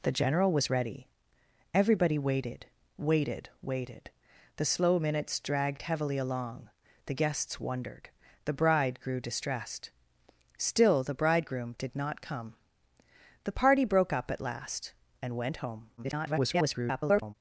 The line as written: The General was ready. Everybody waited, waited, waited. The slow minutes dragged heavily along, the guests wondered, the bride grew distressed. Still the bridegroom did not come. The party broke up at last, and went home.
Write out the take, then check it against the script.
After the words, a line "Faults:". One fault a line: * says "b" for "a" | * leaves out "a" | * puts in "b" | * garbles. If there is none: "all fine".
The General was ready. Everybody waited, waited, waited. The slow minutes dragged heavily along, the guests wondered, the bride grew distressed. Still the bridegroom did not come. The party broke up at last, and went home. [garbled]
Faults:
* garbles